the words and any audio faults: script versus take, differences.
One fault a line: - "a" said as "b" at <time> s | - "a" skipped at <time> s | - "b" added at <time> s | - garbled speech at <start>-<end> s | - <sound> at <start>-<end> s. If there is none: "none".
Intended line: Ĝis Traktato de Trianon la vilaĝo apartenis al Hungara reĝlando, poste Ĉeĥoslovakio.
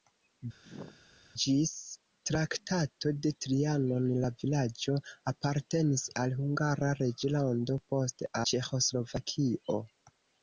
- sneeze at 0.6-1.0 s